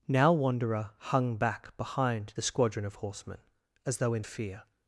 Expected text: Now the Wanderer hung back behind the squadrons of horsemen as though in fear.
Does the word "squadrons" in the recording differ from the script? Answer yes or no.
yes